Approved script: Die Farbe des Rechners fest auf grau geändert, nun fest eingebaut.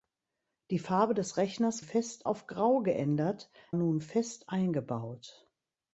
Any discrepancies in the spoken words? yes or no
no